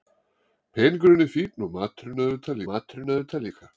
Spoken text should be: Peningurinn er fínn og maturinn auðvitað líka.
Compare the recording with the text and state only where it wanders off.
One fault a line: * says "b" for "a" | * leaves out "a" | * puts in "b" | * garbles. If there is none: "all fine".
* puts in "maturinn auðvitað"